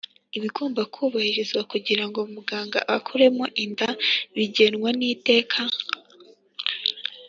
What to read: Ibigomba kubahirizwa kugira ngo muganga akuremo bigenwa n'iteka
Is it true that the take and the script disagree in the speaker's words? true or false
true